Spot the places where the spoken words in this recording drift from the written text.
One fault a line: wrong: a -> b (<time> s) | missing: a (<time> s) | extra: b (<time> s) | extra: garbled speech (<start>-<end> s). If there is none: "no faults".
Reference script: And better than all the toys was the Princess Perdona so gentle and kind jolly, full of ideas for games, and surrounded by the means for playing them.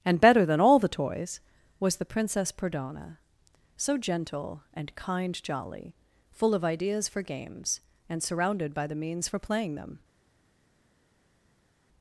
no faults